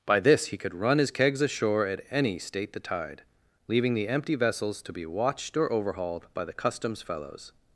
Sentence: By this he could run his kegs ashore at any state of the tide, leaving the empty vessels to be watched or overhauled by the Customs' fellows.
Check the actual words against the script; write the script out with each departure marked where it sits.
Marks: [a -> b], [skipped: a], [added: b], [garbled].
By this he could run his kegs ashore at any state [skipped: of] the tide, leaving the empty vessels to be watched or overhauled by the Customs' fellows.